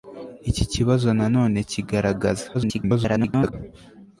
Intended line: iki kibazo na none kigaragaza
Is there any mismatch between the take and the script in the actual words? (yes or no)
yes